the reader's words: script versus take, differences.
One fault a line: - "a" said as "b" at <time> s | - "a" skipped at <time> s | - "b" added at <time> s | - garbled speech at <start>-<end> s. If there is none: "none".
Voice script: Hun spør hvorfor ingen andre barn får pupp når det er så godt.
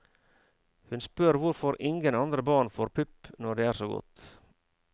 none